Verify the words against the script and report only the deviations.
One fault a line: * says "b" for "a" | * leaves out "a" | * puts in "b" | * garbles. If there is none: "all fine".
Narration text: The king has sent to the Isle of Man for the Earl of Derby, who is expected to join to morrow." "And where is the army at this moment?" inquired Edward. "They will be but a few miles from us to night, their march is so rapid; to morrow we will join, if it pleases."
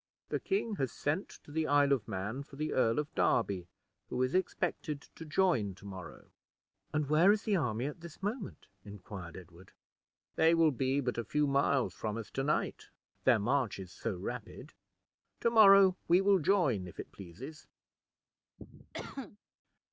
all fine